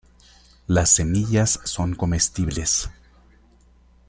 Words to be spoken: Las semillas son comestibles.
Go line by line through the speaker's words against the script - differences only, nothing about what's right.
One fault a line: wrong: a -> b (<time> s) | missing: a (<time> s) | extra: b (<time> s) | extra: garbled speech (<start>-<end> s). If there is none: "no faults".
no faults